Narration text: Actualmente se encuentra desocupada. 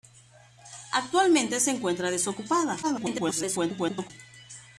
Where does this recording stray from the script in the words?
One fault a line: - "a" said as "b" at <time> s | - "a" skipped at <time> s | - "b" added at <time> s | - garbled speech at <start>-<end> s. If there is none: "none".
- garbled speech at 2.8-4.1 s